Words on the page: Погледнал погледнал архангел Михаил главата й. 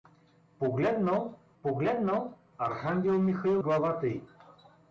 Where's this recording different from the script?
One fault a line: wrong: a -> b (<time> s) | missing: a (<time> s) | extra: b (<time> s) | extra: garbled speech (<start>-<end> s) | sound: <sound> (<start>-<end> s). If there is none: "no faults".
no faults